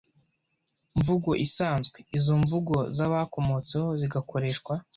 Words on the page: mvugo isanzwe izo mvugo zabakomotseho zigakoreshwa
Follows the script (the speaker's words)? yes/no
yes